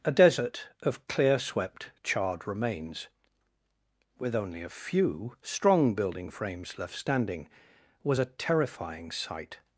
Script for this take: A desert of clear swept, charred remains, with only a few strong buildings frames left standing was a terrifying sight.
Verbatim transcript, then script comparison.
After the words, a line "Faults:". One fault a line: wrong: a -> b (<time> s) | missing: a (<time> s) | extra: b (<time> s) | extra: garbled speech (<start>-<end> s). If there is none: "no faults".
A desert of clear swept, charred remains, with only a few strong building frames left standing was a terrifying sight.
Faults:
wrong: buildings -> building (5.9 s)